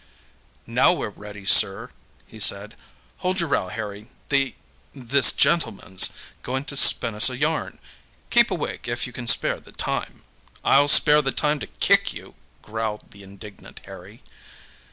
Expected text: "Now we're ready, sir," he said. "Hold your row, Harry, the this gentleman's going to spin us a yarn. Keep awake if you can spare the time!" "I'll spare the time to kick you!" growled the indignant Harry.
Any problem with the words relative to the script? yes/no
no